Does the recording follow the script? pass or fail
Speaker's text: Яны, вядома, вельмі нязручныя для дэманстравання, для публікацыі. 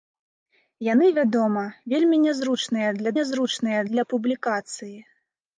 fail